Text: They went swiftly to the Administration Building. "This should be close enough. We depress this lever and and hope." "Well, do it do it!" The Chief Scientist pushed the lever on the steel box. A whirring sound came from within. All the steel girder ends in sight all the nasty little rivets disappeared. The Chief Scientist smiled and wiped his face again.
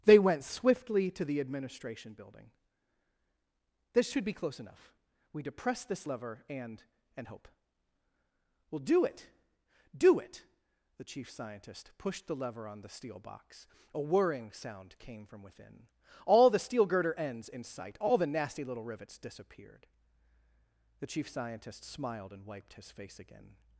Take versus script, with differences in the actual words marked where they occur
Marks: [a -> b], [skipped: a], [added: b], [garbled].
They went swiftly to the Administration Building. "This should be close enough. We depress this lever and and hope." "Well, do it do it!" The Chief Scientist pushed the lever on the steel box. A whirring sound came from within. All the steel girder ends in sight all the nasty little rivets disappeared. The Chief Scientist smiled and wiped his face again.